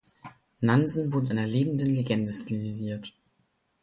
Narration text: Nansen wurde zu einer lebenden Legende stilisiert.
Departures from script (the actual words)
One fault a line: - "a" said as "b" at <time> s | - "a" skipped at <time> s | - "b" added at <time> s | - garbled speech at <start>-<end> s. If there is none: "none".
- "zu" skipped at 1.3 s